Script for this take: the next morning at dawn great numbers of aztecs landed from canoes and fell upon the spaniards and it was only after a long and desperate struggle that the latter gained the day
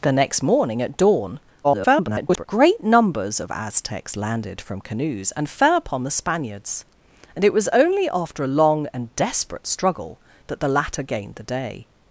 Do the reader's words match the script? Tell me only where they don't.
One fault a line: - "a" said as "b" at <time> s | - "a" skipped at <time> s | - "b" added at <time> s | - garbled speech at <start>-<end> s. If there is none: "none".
- garbled speech at 1.6-2.5 s